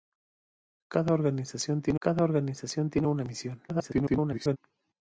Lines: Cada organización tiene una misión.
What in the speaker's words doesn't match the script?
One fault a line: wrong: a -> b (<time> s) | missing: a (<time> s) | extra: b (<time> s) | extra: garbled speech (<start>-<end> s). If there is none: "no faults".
extra: cada organización tiene (2.0 s)
extra: garbled speech (3.7-4.6 s)